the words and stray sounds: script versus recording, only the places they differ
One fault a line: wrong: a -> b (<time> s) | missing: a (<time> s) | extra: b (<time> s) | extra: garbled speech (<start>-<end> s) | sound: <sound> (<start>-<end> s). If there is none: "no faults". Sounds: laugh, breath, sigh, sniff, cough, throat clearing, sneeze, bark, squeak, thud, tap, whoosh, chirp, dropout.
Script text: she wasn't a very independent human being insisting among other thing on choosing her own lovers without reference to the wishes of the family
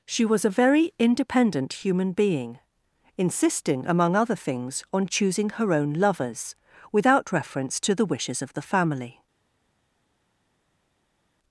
wrong: wasn't -> was (0.2 s)
wrong: thing -> things (4.3 s)